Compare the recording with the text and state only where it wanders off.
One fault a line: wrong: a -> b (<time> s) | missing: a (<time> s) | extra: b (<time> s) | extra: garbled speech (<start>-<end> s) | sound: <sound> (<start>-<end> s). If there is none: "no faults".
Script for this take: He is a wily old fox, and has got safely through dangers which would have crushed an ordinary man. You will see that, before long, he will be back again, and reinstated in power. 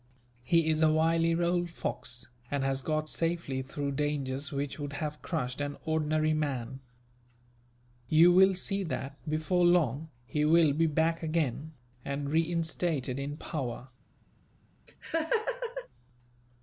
sound: laugh (14.9-15.9 s)